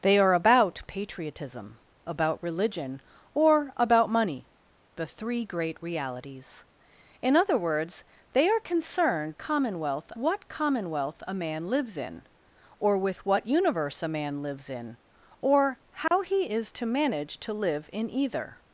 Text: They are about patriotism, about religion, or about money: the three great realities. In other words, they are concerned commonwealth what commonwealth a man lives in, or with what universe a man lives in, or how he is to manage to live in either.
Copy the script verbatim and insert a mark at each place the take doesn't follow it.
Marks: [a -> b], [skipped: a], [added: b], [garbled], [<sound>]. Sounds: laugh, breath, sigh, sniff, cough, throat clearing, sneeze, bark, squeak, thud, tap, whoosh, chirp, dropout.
They are about patriotism, about religion, or about money: the three great realities. In other words, they are concerned commonwealth what commonwealth a man lives in, or with what universe a man lives in, or how [dropout] he is to manage to live in either.